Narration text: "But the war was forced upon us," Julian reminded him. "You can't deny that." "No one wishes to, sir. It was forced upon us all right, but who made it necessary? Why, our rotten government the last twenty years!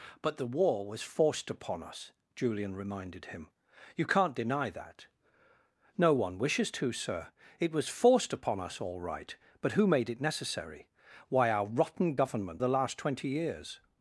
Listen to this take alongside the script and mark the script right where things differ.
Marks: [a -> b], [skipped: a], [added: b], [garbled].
"But the war was forced upon us," Julian reminded him. "You can't deny that." "No one wishes to, sir. It was forced upon us all right, but who made it necessary? Why, our rotten government the last twenty years!